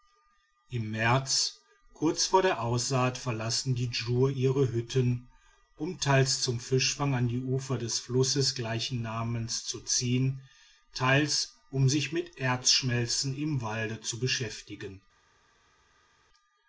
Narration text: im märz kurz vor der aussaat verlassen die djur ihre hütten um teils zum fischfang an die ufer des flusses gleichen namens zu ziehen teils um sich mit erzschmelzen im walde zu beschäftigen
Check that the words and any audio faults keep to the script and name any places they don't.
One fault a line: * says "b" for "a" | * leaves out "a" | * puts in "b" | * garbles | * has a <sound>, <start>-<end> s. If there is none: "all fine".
all fine